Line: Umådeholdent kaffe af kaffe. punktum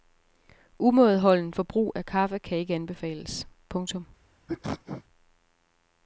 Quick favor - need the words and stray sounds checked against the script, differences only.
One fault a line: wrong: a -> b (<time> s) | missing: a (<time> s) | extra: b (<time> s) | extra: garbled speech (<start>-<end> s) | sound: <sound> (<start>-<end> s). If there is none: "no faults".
wrong: kaffe -> forbrug (1.5 s)
extra: kan ikke anbefales (2.4 s)
sound: sneeze (4.5-5.0 s)